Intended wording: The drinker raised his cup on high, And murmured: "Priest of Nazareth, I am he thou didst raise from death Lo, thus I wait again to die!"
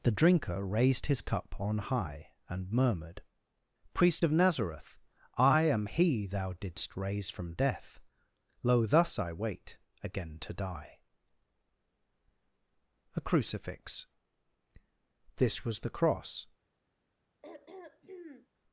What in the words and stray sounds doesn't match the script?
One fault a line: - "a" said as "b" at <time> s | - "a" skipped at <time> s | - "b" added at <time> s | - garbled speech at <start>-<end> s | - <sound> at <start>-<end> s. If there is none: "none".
- "A CRUCIFIX This was the cross" added at 13.2 s
- throat clearing at 17.4-18.5 s